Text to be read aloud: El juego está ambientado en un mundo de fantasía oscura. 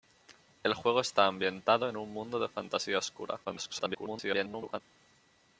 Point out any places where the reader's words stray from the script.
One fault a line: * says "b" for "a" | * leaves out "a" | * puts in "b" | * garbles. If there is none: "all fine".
* garbles